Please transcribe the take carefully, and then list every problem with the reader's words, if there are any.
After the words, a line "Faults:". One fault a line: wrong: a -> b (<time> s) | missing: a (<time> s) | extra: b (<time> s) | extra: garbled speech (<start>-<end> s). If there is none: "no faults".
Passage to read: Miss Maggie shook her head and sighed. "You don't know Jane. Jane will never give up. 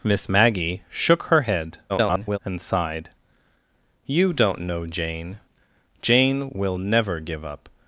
Miss Maggie shook her head [garbled] and sighed. "You don't know Jane. Jane will never give up.
Faults:
extra: garbled speech (1.9-2.4 s)